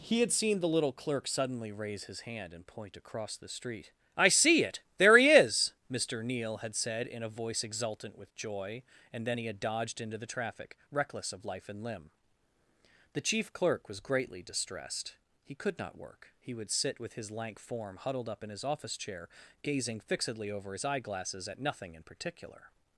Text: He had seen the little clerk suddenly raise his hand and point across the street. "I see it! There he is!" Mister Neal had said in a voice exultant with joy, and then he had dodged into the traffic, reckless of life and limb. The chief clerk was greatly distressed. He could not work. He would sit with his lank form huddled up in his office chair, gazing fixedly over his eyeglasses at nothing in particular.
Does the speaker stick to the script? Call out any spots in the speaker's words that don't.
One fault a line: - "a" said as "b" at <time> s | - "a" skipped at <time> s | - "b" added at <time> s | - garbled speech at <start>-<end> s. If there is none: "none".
none